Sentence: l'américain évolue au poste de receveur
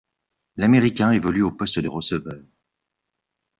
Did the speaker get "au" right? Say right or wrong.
right